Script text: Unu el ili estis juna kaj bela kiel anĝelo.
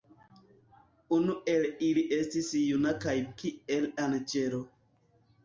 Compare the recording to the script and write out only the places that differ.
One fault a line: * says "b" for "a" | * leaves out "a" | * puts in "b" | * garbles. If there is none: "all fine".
* leaves out "bela"